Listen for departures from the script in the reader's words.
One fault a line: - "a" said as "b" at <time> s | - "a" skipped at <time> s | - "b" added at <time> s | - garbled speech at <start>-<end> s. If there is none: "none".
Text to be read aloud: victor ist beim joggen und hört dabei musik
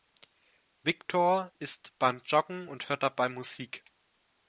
none